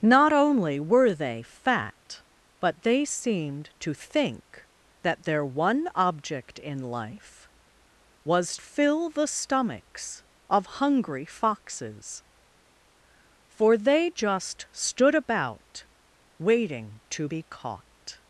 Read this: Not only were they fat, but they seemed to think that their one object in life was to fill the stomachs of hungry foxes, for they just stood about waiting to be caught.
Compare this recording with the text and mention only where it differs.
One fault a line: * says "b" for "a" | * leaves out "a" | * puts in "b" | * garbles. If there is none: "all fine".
* leaves out "to"